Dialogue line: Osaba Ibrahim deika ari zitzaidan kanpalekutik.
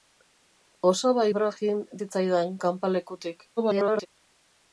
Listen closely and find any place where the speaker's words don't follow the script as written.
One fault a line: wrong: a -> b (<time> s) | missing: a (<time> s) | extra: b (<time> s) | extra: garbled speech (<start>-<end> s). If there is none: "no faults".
missing: deika ari (1.8 s)
extra: garbled speech (3.6-4.1 s)